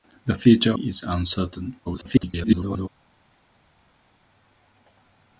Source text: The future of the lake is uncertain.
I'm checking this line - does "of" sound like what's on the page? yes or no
no